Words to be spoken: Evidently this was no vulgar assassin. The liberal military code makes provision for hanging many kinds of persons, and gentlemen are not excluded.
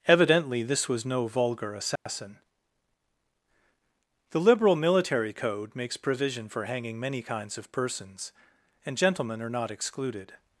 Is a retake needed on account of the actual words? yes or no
no